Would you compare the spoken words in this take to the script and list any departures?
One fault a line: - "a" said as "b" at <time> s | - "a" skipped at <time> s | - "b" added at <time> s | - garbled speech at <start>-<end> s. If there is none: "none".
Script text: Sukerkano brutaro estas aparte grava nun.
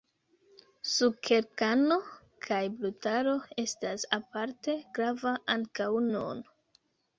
- "kaj" added at 2.5 s
- "ankaŭ" added at 5.6 s